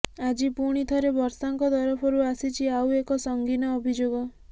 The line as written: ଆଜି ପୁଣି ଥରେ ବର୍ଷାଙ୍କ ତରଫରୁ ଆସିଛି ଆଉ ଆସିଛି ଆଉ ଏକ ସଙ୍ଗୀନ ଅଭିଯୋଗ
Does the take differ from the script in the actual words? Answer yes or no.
yes